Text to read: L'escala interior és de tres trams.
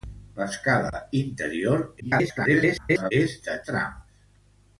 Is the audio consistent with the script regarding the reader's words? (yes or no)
no